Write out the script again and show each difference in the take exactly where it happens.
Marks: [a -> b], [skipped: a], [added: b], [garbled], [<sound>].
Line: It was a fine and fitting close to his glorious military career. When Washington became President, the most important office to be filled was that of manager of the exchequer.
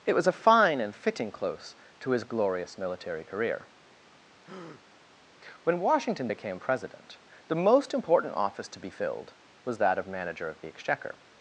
It was a fine and fitting close to his glorious military career. [breath] When Washington became President, the most important office to be filled was that of manager of the exchequer.